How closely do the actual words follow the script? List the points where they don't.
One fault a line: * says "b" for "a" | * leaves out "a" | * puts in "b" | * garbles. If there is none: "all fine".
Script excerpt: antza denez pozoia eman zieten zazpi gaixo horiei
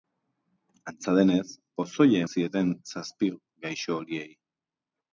* leaves out "eman"